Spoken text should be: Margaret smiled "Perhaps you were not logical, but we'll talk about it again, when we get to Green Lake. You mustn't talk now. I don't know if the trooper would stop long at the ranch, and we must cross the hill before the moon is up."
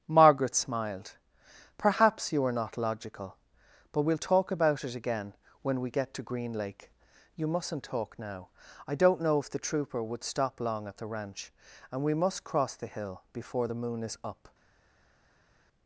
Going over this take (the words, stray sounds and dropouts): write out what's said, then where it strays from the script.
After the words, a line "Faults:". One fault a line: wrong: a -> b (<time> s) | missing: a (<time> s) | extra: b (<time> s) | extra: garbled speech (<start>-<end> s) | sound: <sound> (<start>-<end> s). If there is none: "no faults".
Margaret smiled "Perhaps you are not logical, but we'll talk about it again, when we get to Green Lake. You mustn't talk now. I don't know if the trooper would stop long at the ranch, and we must cross the hill before the moon is up."
Faults:
wrong: were -> are (2.4 s)